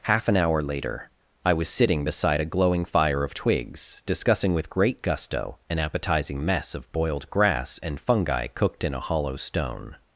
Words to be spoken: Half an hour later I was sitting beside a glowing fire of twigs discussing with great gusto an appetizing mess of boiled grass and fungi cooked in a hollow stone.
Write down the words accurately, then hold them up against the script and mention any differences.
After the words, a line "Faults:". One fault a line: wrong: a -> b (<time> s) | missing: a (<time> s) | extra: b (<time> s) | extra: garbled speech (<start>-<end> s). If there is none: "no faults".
Half an hour later I was sitting beside a glowing fire of twigs discussing with great gusto an appetizing mess of boiled grass and fungi cooked in a hollow stone.
Faults:
no faults